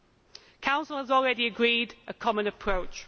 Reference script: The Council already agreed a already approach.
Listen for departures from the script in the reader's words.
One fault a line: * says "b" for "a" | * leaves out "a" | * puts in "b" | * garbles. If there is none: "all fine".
* puts in "has"
* says "common" for "already"